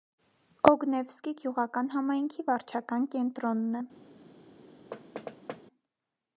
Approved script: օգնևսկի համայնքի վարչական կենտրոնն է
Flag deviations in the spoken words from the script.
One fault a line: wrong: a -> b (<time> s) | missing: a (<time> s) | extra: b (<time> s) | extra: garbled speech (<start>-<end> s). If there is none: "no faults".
extra: գյուղական (1.4 s)